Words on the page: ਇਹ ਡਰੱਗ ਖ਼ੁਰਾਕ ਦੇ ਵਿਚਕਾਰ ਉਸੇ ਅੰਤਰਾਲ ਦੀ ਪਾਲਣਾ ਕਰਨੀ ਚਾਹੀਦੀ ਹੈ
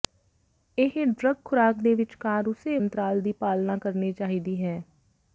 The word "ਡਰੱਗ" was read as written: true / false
true